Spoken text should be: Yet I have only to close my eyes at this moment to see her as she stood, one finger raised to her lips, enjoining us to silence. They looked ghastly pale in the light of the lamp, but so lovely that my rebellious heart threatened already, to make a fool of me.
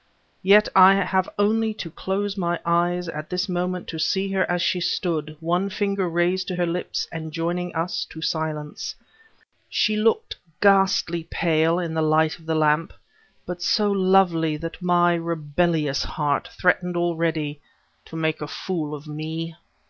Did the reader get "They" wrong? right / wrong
wrong